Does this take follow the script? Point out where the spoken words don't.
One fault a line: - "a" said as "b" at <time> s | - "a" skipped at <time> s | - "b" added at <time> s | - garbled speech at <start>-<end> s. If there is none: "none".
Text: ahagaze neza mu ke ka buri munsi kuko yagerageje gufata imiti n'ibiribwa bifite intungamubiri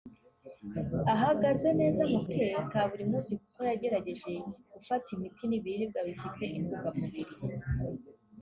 none